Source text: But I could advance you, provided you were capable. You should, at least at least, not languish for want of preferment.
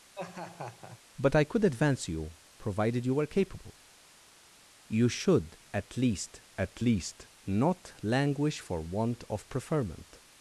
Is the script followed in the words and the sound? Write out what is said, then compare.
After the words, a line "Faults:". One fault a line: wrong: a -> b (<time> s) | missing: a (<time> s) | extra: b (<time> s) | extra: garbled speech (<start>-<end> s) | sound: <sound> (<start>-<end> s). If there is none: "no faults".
But I could advance you, provided you were capable. You should, at least at least, not languish for want of preferment.
Faults:
sound: laugh (0.1-1.0 s)